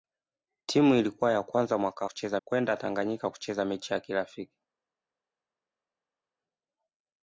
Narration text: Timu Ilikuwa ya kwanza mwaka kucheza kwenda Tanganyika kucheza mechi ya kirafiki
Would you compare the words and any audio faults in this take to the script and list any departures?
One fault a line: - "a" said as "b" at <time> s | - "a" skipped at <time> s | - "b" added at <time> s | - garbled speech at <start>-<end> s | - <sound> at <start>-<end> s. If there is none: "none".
none